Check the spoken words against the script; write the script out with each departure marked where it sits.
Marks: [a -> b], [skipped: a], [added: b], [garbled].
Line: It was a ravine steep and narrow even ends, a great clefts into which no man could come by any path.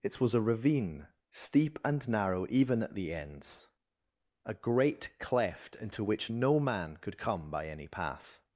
It was a ravine steep and narrow even [added: at the] ends, a great [clefts -> cleft] into which no man could come by any path.